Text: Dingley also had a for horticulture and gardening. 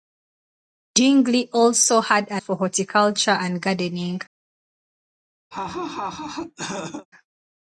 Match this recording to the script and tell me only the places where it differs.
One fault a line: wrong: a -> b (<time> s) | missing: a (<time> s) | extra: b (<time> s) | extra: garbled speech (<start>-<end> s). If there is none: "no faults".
no faults